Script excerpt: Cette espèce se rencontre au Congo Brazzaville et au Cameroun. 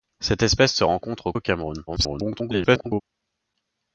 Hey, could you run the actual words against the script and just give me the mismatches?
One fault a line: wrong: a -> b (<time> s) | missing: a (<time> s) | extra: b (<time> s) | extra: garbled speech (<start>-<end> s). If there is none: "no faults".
missing: Congo Brazzaville et (1.3 s)
extra: garbled speech (1.9-3.0 s)